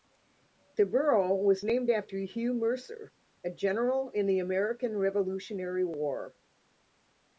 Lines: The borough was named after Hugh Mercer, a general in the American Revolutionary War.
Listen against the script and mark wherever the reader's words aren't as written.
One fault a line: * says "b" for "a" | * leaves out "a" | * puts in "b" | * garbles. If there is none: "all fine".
all fine